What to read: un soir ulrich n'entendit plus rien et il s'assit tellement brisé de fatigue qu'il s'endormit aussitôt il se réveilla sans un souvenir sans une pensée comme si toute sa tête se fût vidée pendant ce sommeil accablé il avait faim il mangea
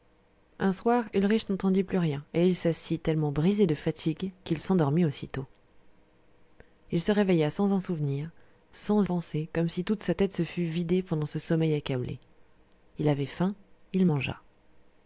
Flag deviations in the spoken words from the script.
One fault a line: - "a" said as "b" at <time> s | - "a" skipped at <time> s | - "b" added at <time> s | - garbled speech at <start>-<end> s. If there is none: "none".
- "une" skipped at 9.0 s